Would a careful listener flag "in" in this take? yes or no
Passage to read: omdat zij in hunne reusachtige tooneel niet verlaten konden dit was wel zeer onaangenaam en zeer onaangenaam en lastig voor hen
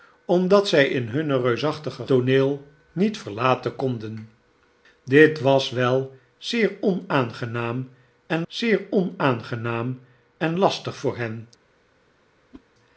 no